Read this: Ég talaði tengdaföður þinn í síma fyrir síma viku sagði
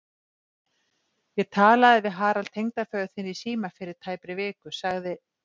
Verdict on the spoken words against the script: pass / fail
fail